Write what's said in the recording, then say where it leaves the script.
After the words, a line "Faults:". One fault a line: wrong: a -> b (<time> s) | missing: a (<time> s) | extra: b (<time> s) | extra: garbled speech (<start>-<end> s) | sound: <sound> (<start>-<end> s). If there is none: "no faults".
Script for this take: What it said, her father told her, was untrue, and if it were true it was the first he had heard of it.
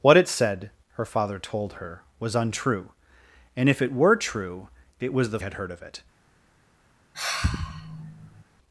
What it said, her father told her, was untrue, and if it were true it was the had heard of it.
Faults:
missing: first he (5.4 s)
sound: sigh (7.1-8.4 s)